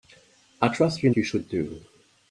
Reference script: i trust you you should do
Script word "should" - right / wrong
right